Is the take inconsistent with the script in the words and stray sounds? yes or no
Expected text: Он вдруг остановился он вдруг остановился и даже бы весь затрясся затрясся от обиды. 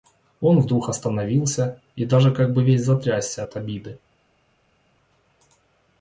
yes